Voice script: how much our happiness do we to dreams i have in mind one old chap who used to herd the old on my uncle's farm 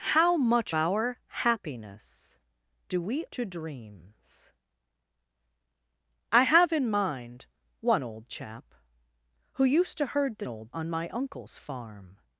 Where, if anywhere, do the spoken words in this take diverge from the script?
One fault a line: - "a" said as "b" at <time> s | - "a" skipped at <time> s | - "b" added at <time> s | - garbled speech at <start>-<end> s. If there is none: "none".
none